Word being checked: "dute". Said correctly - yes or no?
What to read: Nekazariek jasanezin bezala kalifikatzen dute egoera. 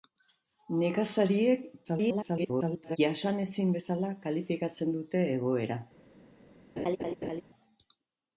yes